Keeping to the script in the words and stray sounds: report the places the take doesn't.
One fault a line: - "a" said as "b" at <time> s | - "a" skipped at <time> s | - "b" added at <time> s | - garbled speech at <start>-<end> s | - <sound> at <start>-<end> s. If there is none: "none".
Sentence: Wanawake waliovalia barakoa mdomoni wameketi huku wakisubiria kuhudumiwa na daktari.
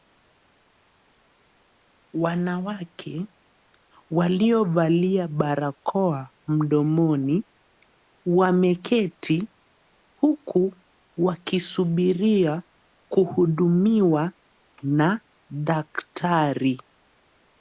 none